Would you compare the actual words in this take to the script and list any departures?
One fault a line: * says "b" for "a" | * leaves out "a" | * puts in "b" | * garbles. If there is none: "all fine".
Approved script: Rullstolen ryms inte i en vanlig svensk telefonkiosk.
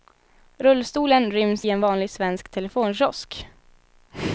* leaves out "inte"